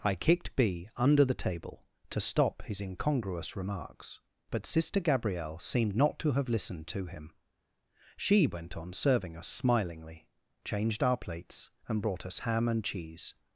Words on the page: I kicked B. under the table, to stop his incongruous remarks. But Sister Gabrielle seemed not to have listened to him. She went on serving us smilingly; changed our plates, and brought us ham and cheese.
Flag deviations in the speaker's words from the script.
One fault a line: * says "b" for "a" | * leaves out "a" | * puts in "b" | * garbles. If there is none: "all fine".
all fine